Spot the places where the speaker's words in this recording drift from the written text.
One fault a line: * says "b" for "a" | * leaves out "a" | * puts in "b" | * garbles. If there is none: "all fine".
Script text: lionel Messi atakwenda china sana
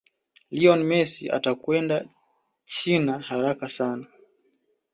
* puts in "haraka"